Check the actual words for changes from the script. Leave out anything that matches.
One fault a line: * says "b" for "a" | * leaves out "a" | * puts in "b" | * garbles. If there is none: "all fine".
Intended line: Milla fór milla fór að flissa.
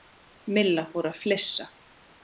* leaves out "milla fór"